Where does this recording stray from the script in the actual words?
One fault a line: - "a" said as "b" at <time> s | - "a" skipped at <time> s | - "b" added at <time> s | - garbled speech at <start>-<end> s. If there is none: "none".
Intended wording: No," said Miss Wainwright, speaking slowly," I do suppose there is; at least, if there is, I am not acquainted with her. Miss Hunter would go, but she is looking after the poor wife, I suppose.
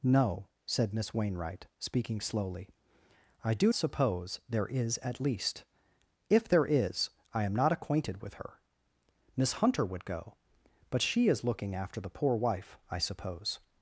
none